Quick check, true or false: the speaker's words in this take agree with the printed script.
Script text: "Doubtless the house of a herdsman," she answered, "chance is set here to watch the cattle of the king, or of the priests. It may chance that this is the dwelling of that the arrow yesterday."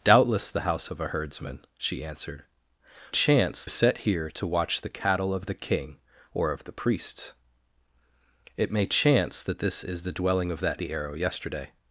true